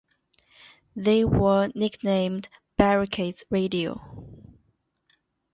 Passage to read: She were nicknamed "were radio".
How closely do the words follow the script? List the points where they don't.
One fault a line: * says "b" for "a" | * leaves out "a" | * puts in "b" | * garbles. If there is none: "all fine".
* says "They" for "She"
* says "barricades" for "were"